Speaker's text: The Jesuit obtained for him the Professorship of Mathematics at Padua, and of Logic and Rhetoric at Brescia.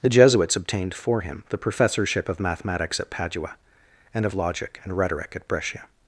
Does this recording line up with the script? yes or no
no